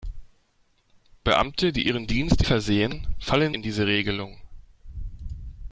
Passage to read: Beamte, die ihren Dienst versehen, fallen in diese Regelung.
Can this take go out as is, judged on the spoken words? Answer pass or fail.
pass